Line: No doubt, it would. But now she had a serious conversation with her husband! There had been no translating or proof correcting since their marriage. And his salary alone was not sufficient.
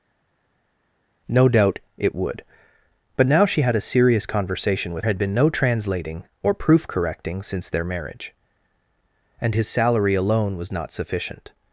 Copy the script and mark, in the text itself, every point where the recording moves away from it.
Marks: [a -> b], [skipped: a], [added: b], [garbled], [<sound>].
No doubt, it would. But now she had a serious conversation with [skipped: her husband! There] had been no translating or proof correcting since their marriage. And his salary alone was not sufficient.